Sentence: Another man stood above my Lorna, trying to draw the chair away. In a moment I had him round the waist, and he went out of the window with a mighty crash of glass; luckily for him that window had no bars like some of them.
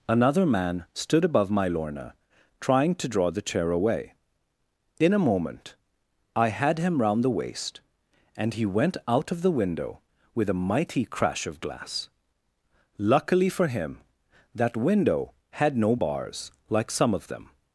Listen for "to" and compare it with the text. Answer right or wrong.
right